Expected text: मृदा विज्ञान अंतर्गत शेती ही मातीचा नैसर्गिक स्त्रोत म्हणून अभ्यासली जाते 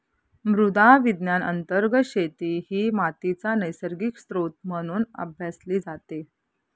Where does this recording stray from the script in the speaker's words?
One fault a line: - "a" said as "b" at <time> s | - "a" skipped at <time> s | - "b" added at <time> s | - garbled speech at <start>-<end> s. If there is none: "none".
none